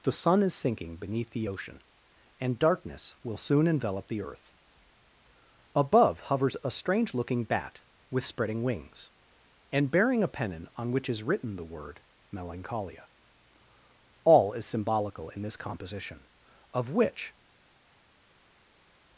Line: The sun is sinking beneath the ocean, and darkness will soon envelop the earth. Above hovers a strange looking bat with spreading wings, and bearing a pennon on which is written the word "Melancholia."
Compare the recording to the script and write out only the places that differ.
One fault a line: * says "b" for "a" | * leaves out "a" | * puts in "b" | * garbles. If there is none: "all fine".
* puts in "All is symbolical in this composition of which"